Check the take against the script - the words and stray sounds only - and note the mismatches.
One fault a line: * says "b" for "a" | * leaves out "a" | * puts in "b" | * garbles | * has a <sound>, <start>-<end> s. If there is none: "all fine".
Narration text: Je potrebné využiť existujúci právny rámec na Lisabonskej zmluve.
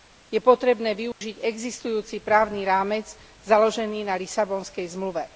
* has a dropout, 1.1-1.2 s
* puts in "založený"